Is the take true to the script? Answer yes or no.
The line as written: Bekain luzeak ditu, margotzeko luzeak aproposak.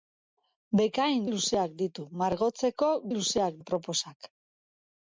yes